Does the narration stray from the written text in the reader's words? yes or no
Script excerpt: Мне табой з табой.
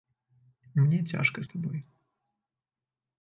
yes